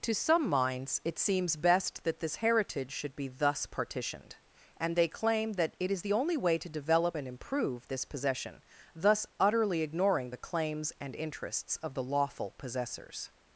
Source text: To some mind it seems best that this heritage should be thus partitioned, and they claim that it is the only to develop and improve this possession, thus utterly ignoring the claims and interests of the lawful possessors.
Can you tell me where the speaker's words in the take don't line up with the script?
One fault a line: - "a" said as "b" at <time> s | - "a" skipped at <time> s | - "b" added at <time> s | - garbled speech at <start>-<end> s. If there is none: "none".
- "mind" said as "minds" at 0.5 s
- "way" added at 6.3 s